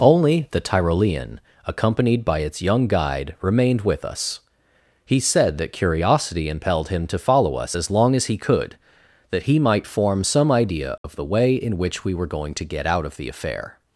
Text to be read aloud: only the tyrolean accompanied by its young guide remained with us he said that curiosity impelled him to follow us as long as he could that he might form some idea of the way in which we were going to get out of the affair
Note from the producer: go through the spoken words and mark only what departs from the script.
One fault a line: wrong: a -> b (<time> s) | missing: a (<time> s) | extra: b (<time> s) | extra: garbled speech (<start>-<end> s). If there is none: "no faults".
no faults